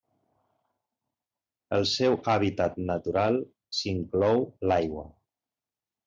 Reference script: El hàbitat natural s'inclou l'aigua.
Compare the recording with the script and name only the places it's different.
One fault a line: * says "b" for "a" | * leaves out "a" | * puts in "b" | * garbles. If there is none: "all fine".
* puts in "seu"